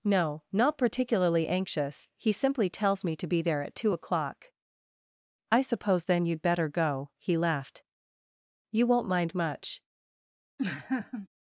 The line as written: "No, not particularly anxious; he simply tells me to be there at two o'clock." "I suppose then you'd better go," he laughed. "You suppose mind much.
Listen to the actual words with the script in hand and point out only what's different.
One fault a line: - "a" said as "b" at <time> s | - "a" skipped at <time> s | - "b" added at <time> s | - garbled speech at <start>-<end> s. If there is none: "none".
- "suppose" said as "won't" at 8.9 s